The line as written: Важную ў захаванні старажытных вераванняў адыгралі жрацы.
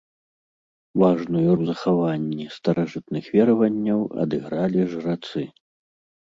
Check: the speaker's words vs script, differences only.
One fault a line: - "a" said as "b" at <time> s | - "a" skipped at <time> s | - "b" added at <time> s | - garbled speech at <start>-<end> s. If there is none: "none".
none